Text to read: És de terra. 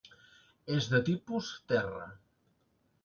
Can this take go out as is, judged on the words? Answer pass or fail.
fail